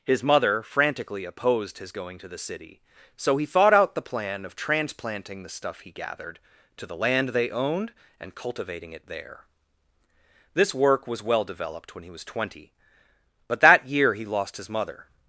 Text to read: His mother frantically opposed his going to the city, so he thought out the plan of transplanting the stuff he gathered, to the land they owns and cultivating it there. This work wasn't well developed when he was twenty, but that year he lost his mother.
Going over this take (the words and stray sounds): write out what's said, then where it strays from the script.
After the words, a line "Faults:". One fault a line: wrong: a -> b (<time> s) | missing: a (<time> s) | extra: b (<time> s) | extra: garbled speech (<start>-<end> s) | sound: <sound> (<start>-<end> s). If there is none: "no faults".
His mother frantically opposed his going to the city, so he thought out the plan of transplanting the stuff he gathered, to the land they owned and cultivating it there. This work was well developed when he was twenty, but that year he lost his mother.
Faults:
wrong: owns -> owned (7.5 s)
wrong: wasn't -> was (11.1 s)